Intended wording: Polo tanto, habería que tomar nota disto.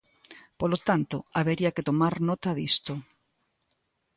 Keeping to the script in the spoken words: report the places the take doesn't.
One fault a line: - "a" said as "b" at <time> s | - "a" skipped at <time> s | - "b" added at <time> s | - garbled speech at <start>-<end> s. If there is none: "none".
none